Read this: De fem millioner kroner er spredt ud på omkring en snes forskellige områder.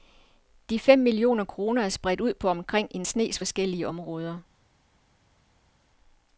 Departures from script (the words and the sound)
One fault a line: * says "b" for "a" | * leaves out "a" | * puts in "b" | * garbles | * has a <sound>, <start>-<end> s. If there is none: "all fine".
all fine